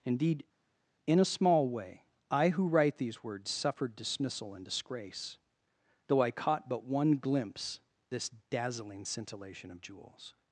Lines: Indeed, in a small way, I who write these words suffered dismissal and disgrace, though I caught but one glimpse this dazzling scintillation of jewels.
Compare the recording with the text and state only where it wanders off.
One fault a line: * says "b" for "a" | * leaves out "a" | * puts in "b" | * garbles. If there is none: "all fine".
all fine